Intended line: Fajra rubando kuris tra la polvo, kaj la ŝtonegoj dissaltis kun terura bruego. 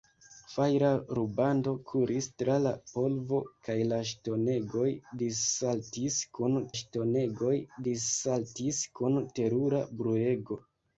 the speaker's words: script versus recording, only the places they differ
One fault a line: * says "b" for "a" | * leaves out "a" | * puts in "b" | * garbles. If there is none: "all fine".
* puts in "ŝtonegoj dissaltis kun"